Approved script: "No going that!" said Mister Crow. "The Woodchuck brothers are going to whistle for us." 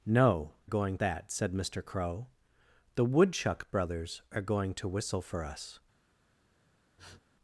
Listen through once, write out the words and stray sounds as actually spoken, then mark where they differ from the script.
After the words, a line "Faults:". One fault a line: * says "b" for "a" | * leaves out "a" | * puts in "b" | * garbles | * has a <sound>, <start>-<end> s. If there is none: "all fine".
"No going that!" said Mister Crow. "The Woodchuck brothers are going to whistle for us."
Faults:
* has a sniff, 7.0-7.2 s